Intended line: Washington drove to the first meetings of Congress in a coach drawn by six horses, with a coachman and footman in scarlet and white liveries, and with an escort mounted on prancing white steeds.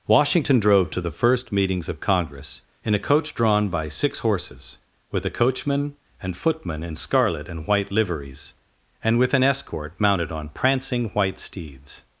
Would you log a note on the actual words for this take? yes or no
no